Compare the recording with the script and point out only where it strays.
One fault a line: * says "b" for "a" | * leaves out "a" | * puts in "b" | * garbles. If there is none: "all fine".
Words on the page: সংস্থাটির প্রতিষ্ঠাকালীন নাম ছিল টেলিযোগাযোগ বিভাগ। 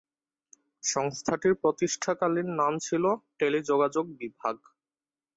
all fine